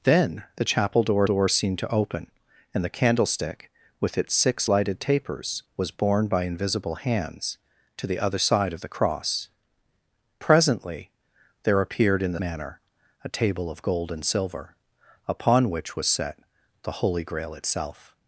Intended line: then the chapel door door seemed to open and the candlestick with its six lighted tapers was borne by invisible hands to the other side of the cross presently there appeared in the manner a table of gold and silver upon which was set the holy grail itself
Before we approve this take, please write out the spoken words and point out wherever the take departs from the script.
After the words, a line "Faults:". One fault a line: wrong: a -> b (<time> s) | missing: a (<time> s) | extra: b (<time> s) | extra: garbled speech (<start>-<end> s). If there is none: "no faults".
then the chapel door door seemed to open and the candlestick with its six lighted tapers was borne by invisible hands to the other side of the cross presently there appeared in the manner a table of gold and silver upon which was set the holy grail itself
Faults:
no faults